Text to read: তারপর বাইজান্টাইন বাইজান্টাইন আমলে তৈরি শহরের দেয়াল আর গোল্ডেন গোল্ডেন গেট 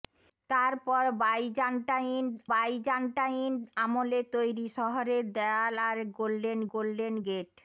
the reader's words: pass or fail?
pass